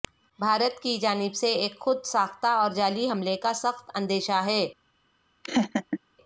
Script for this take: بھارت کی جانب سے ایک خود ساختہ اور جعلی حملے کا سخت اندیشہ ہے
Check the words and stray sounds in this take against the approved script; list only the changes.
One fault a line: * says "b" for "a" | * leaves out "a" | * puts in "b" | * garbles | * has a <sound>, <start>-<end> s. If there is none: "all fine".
* has a laugh, 5.4-6.0 s